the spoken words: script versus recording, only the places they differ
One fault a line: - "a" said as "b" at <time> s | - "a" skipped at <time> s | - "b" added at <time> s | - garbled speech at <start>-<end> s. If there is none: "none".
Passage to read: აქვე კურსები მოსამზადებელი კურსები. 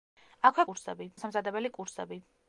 none